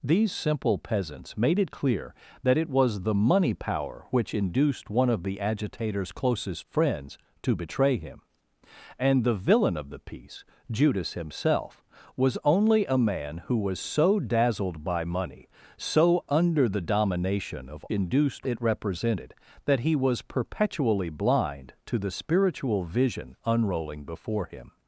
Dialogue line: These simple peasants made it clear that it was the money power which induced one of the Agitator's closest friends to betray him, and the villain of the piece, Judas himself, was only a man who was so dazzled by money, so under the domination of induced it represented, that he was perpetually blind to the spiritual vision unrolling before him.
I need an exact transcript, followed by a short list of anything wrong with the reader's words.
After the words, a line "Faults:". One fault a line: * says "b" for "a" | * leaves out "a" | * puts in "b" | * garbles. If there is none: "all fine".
These simple peasants made it clear that it was the money power which induced one of the Agitator's closest friends to betray him, and the villain of the piece, Judas himself, was only a man who was so dazzled by money, so under the domination of induced it represented, that he was perpetually blind to the spiritual vision unrolling before him.
Faults:
all fine